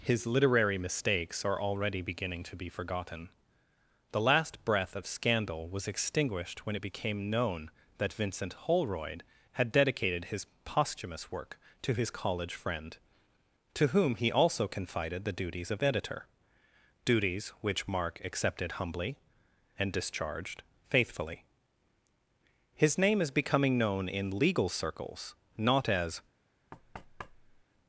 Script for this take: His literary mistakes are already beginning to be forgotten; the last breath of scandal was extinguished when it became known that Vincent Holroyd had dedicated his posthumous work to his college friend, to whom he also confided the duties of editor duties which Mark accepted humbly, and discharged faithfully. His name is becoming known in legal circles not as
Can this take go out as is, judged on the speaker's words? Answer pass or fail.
pass